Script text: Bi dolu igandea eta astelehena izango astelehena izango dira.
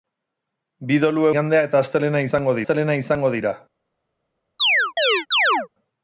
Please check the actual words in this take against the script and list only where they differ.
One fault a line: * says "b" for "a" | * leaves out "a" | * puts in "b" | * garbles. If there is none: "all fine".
all fine